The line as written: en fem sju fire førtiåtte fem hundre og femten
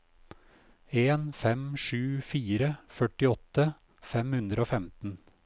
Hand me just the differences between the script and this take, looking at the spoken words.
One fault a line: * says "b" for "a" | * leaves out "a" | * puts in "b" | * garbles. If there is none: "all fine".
all fine